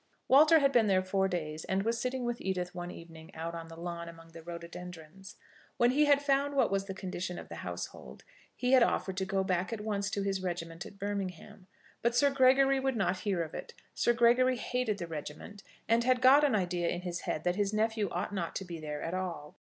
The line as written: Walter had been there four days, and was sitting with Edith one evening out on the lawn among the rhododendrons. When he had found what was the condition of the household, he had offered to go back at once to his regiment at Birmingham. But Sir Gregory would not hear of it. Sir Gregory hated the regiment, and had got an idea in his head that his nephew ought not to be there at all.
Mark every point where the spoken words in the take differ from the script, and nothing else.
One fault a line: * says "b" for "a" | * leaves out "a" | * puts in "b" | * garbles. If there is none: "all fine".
all fine